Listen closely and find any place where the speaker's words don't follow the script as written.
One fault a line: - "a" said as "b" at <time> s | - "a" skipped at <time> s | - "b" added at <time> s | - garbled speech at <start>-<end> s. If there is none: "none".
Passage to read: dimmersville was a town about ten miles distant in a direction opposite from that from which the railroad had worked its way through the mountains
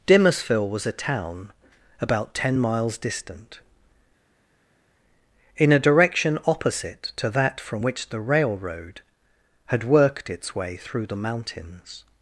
- "from" said as "to" at 7.2 s